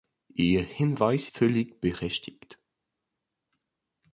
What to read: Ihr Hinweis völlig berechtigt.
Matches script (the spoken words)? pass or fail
pass